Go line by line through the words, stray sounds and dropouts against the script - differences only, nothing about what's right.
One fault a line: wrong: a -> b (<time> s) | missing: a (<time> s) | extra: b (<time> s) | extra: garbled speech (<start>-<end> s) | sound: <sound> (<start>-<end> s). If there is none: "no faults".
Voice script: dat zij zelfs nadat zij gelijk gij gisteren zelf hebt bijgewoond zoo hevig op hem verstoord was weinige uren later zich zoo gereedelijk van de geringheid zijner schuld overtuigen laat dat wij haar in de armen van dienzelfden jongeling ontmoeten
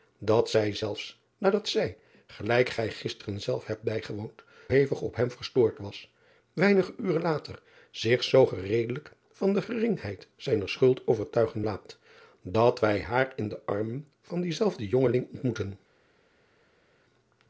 missing: zoo (4.4 s)